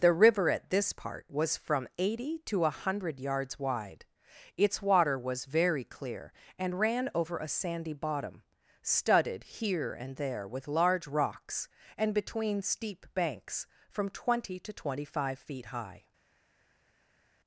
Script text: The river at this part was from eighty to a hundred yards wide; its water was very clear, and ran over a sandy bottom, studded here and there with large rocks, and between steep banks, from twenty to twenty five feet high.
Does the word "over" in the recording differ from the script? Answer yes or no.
no